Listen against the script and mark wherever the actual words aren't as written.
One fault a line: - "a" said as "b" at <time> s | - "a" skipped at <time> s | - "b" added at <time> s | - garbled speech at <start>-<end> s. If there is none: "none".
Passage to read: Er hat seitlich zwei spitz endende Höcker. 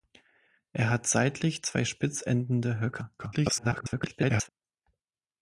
- garbled speech at 3.2-4.5 s